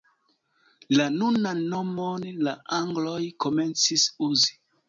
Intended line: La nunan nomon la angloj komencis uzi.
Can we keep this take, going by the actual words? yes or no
yes